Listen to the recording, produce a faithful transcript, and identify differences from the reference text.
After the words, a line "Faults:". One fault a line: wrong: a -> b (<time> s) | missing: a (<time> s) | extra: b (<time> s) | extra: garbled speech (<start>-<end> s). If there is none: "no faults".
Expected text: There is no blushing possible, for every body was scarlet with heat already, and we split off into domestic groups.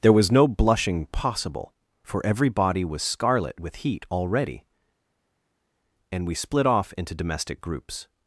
There was no blushing possible, for every body was scarlet with heat already, and we split off into domestic groups.
Faults:
wrong: is -> was (0.1 s)